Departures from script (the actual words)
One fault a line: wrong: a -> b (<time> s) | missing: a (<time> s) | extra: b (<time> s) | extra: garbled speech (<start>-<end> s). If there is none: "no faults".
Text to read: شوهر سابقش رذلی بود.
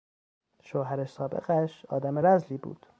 extra: آدم (1.9 s)